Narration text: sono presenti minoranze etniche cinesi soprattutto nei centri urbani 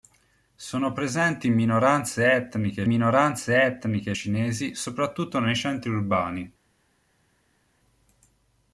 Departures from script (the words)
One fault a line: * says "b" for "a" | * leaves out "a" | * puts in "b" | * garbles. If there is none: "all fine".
* puts in "minoranze etniche"